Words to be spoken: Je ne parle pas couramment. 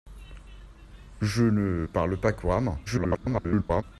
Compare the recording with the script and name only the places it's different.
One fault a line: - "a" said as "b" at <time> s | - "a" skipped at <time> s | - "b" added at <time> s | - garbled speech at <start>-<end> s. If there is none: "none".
- garbled speech at 2.9-3.8 s